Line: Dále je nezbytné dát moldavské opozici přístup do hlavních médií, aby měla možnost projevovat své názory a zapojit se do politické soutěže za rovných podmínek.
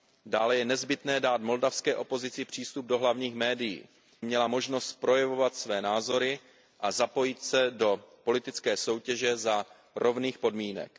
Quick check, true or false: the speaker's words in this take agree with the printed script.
false